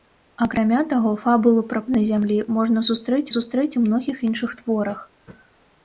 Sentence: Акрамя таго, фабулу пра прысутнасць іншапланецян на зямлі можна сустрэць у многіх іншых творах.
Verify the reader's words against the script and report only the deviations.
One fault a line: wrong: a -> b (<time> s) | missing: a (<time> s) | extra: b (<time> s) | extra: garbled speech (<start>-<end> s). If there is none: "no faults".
missing: прысутнасць іншапланецян (1.8 s)
extra: сустрэць (3.3 s)